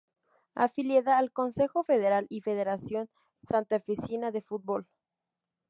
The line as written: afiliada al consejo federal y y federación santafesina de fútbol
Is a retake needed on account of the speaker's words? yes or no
yes